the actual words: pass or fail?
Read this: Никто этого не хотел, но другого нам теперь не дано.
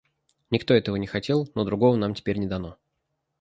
pass